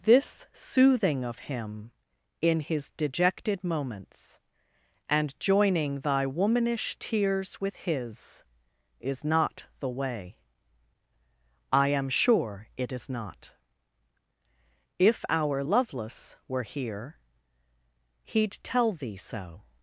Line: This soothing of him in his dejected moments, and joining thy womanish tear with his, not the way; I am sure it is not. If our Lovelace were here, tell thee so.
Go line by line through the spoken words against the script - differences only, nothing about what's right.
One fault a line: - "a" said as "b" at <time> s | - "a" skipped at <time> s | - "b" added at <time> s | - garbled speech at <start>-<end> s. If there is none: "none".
- "tear" said as "tears" at 7.0 s
- "is" added at 9.0 s
- "he'd" added at 18.2 s